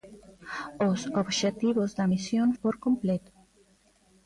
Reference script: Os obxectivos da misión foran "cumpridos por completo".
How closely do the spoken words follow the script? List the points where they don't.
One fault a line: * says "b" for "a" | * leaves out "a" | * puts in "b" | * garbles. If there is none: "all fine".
* leaves out "foran cumpridos"